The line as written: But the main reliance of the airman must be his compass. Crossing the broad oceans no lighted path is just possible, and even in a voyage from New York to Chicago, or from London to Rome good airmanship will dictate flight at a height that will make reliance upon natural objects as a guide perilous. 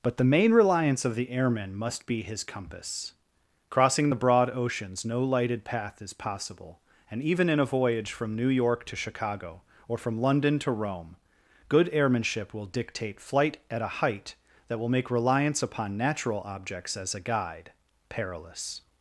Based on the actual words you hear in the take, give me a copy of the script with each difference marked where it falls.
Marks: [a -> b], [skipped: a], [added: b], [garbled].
But the main reliance of the airman must be his compass. Crossing the broad oceans no lighted path is [skipped: just] possible, and even in a voyage from New York to Chicago, or from London to Rome good airmanship will dictate flight at a height that will make reliance upon natural objects as a guide perilous.